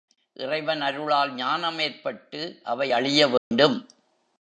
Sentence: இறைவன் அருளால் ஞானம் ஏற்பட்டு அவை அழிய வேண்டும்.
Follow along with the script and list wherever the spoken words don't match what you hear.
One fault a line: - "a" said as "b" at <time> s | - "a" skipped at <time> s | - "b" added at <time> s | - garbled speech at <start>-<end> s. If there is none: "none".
none